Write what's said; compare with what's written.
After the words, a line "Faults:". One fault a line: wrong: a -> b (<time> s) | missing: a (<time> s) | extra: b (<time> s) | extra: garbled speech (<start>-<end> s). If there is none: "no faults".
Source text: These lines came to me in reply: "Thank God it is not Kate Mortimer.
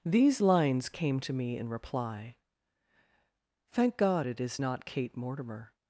These lines came to me in reply: "Thank God it is not Kate Mortimer.
Faults:
no faults